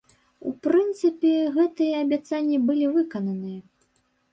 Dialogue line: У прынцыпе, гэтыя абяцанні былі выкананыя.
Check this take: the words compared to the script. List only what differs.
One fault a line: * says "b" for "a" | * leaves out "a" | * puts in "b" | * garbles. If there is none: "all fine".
all fine